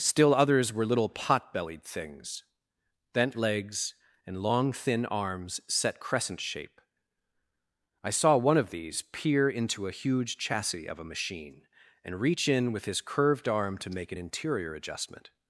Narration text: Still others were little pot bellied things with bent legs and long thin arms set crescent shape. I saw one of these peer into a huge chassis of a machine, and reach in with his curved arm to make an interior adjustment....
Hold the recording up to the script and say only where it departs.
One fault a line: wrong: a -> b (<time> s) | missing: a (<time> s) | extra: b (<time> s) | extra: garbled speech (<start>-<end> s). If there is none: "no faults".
missing: with (2.4 s)